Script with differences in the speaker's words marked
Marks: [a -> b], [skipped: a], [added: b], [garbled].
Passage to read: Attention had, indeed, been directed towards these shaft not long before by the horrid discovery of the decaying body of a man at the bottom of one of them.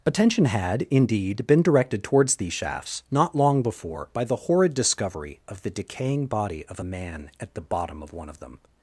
Attention had, indeed, been directed towards these [shaft -> shafts] not long before by the horrid discovery of the decaying body of a man at the bottom of one of them.